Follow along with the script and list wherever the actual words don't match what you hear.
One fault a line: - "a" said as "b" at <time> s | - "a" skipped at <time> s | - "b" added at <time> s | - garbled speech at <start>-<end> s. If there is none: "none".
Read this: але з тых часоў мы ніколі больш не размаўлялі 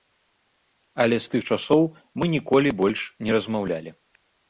none